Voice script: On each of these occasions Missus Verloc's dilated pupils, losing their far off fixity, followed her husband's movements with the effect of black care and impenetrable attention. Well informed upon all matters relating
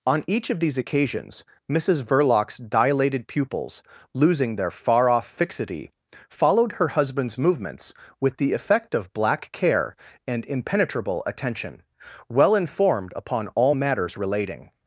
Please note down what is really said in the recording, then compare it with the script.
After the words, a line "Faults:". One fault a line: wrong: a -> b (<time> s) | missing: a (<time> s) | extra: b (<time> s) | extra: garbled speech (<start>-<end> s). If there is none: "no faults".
On each of these occasions Missus Verloc's dilated pupils, losing their far off fixity, followed her husband's movements with the effect of black care and impenetrable attention. Well informed upon all matters relating
Faults:
no faults